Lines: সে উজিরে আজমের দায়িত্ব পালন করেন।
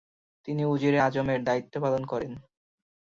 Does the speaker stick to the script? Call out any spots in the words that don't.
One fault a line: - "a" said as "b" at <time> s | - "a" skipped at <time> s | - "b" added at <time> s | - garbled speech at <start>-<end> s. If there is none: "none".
- "সে" said as "তিনি" at 0.5 s